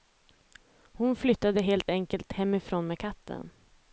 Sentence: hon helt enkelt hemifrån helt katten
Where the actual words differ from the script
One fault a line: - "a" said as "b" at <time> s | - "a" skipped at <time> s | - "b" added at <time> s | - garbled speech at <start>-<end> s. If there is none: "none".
- "flyttade" added at 1.1 s
- "helt" said as "med" at 2.9 s